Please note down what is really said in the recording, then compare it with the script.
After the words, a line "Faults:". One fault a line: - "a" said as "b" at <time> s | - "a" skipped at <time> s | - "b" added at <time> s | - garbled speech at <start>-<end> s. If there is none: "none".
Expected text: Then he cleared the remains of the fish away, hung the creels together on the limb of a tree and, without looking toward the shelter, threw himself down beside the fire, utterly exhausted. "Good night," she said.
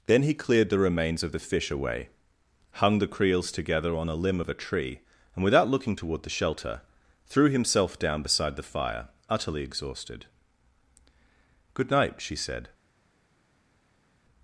Then he cleared the remains of the fish away, hung the creels together on a limb of a tree and, without looking toward the shelter, threw himself down beside the fire, utterly exhausted. "Good night," she said.
Faults:
- "the" said as "a" at 4.1 s